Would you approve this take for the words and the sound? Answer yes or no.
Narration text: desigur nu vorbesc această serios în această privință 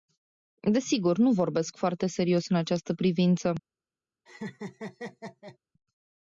no